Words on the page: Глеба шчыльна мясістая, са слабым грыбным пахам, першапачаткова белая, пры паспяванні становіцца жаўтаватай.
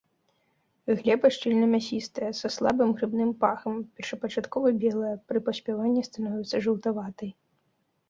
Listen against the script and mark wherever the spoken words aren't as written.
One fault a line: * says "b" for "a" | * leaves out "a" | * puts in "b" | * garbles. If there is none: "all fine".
all fine